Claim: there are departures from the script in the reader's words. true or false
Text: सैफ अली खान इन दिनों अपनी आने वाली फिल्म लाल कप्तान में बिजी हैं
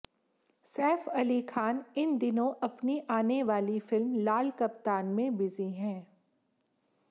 false